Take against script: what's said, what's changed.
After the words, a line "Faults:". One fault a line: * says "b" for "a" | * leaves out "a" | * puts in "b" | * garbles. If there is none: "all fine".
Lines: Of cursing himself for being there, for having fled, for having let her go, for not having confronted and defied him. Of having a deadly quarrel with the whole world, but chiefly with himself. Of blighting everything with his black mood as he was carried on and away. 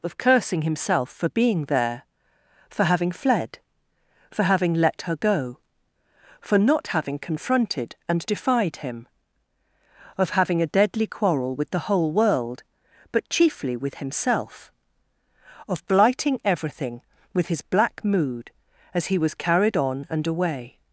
Of cursing himself for being there, for having fled, for having let her go, for not having confronted and defied him. Of having a deadly quarrel with the whole world, but chiefly with himself. Of blighting everything with his black mood as he was carried on and away.
Faults:
all fine